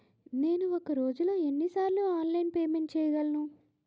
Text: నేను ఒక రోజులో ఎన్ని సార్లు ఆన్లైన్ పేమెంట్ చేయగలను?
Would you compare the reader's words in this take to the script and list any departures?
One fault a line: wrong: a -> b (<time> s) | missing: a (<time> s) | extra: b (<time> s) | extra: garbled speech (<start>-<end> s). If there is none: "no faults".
no faults